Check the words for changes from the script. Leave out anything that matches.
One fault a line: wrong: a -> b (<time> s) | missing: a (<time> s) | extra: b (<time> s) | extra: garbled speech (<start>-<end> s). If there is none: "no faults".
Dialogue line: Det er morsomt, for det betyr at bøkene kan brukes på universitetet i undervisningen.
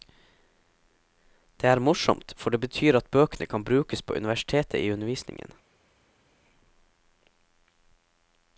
no faults